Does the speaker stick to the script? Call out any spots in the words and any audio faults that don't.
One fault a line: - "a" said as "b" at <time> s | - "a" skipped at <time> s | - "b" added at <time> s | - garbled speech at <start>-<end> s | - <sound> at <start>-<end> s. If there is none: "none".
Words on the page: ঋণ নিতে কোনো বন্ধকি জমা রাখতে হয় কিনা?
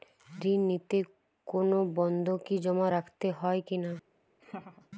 - laugh at 4.4-4.9 s